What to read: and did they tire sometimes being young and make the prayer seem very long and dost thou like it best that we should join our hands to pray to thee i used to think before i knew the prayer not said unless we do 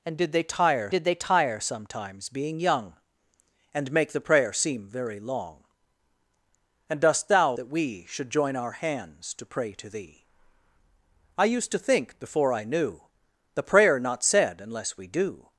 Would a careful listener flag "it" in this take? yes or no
yes